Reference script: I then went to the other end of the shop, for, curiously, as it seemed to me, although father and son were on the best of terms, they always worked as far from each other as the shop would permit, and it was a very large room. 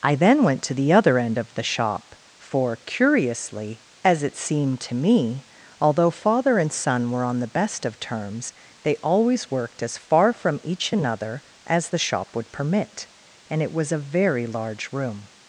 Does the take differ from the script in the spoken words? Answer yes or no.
yes